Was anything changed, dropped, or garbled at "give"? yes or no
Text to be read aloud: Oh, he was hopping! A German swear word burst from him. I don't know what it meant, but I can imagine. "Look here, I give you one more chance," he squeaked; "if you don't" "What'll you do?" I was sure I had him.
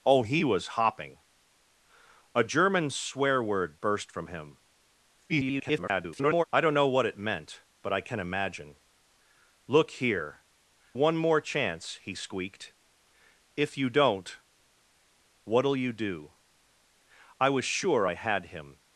yes